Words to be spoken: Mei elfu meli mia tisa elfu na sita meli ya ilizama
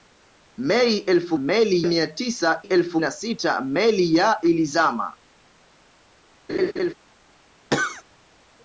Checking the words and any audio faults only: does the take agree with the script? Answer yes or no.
no